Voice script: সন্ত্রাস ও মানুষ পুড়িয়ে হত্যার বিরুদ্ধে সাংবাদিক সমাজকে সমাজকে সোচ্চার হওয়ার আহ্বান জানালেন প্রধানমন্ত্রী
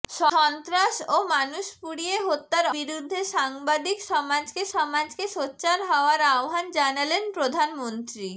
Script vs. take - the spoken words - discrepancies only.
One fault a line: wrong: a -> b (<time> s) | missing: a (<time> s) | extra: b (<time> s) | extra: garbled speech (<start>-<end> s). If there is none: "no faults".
no faults